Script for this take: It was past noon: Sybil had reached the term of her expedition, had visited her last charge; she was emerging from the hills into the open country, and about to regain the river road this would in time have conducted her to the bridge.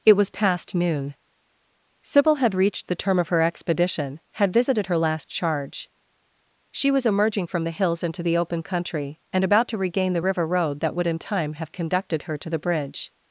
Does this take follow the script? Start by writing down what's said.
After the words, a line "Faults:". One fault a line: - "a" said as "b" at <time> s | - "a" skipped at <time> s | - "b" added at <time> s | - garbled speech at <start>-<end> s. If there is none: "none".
It was past noon: Sybil had reached the term of her expedition, had visited her last charge; she was emerging from the hills into the open country, and about to regain the river road that would in time have conducted her to the bridge.
Faults:
- "this" said as "that" at 10.8 s